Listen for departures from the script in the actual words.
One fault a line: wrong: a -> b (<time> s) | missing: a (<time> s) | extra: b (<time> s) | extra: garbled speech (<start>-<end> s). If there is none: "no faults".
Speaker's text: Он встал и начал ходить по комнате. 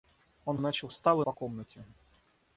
missing: встал (0.6 s)
wrong: ходить -> встал (0.9 s)